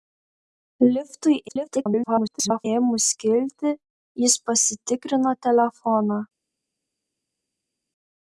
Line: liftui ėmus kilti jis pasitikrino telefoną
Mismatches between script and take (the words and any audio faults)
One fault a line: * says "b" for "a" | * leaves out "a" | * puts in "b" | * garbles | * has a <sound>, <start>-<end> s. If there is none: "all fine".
* garbles